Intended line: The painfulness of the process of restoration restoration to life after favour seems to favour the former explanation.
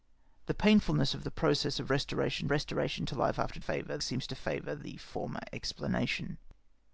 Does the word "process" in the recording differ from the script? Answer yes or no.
no